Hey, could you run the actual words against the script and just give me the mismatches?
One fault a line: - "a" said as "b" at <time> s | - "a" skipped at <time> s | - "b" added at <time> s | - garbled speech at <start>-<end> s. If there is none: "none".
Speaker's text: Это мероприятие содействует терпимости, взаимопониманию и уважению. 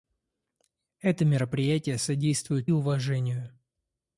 - "терпимости взаимопониманию и" skipped at 2.7 s